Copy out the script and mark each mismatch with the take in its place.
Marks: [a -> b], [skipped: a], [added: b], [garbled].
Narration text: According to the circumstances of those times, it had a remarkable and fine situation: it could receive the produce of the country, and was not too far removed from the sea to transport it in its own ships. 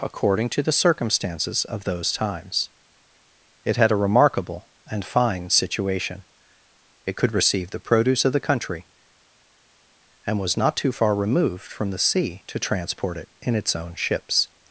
According to the circumstances of those times, it had a remarkable and fine situation: it could receive the produce of the country, and was not too far removed from the sea to transport it in its own ships.